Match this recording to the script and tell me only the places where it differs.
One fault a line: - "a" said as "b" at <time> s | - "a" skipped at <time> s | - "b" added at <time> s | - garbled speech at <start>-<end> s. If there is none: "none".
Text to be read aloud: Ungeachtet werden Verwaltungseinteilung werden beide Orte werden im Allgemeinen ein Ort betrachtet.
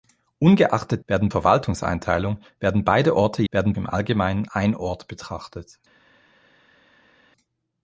none